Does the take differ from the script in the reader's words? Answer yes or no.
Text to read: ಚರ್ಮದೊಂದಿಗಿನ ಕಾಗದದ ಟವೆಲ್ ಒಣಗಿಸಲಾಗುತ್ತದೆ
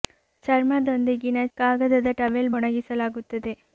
no